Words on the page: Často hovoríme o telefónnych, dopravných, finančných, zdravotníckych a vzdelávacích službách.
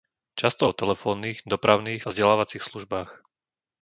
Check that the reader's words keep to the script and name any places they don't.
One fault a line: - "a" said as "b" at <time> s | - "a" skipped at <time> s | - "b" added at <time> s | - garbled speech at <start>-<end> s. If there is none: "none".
- "hovoríme" skipped at 0.7 s
- "finančných zdravotníckych" skipped at 2.0 s